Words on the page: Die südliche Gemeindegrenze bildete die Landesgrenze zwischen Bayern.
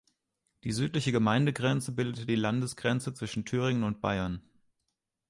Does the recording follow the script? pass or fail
fail